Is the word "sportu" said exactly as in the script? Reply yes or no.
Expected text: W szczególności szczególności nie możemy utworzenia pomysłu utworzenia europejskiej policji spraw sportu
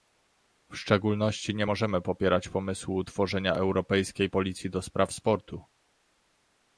yes